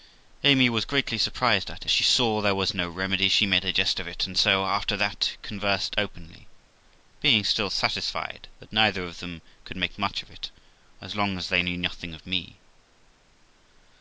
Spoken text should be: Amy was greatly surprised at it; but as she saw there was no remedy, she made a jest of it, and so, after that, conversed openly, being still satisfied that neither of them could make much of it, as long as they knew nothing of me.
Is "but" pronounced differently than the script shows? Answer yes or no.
yes